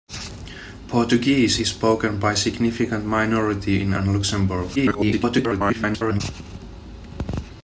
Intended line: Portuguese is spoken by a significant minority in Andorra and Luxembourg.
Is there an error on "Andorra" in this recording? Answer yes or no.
yes